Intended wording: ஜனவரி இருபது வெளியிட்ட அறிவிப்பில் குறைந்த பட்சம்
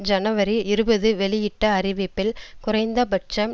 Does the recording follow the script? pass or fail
pass